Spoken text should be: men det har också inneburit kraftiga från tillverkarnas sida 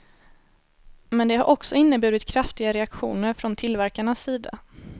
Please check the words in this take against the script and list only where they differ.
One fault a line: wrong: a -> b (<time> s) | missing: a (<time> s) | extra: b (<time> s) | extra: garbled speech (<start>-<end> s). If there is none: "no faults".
extra: reaktioner (2.7 s)